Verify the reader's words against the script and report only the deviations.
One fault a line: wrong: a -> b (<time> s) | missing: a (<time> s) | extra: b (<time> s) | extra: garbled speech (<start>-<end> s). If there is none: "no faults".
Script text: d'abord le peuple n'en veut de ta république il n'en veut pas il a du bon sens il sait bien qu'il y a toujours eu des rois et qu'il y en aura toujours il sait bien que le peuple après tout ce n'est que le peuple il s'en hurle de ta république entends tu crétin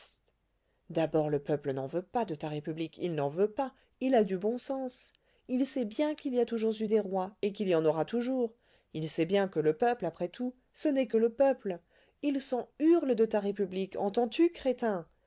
extra: pas (2.0 s)